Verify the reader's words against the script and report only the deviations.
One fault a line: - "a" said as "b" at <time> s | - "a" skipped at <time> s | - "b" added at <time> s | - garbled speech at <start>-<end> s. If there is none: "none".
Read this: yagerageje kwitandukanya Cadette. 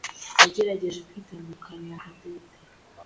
none